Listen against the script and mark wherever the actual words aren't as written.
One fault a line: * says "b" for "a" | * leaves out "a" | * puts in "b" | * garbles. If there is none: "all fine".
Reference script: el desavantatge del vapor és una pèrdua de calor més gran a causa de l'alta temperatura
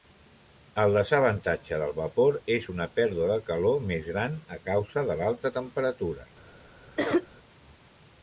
all fine